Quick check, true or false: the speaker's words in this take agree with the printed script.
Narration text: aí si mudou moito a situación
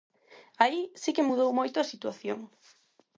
false